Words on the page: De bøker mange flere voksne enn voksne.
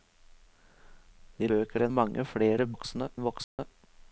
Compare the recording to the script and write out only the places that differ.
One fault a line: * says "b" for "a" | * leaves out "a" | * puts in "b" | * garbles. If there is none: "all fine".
all fine